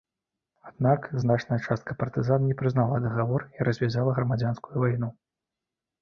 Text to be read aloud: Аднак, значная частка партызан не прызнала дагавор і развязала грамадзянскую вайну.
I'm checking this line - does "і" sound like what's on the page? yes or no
yes